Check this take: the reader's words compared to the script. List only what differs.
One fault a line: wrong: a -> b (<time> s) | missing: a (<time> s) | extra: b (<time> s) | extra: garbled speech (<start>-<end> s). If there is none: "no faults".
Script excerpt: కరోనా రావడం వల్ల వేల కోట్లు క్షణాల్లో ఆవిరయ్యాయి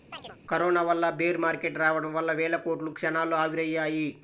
extra: వల్ల బేర్ మార్కెట్ (0.8 s)